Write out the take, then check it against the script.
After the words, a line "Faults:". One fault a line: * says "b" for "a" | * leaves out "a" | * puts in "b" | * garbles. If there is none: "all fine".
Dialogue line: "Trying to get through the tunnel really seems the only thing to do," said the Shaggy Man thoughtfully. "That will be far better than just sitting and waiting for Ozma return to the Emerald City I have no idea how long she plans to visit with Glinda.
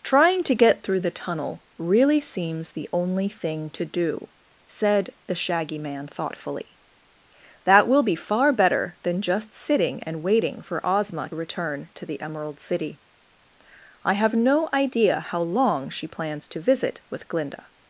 "Trying to get through the tunnel really seems the only thing to do," said the Shaggy Man thoughtfully. "That will be far better than just sitting and waiting for Ozma return to the Emerald City I have no idea how long she plans to visit with Glinda.
Faults:
all fine